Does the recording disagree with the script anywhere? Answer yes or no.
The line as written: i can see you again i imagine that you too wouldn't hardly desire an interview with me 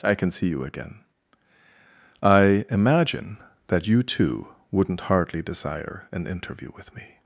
no